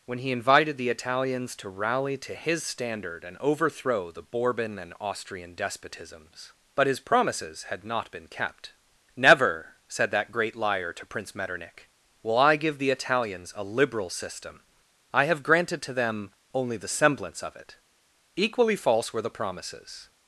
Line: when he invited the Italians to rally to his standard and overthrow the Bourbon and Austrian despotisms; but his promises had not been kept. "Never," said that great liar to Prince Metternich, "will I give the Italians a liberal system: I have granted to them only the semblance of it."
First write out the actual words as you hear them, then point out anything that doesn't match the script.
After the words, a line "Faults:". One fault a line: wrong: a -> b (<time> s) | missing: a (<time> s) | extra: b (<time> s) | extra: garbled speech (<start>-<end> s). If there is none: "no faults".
when he invited the Italians to rally to his standard and overthrow the Bourbon and Austrian despotisms; but his promises had not been kept. "Never," said that great liar to Prince Metternich, "will I give the Italians a liberal system: I have granted to them only the semblance of it." Equally false were the promises
Faults:
extra: Equally false were the promises (18.4 s)